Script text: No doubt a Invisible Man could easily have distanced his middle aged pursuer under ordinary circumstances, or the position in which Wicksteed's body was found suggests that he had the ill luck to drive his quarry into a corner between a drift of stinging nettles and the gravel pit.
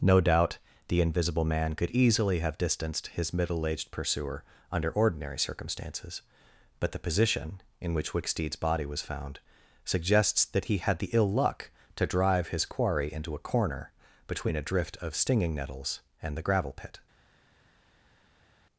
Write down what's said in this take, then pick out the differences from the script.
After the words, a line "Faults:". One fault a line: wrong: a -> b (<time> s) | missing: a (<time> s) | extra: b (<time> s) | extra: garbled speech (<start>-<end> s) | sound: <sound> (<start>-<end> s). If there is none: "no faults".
No doubt the Invisible Man could easily have distanced his middle aged pursuer under ordinary circumstances, but the position in which Wicksteed's body was found suggests that he had the ill luck to drive his quarry into a corner between a drift of stinging nettles and the gravel pit.
Faults:
wrong: a -> the (0.9 s)
wrong: or -> but (6.8 s)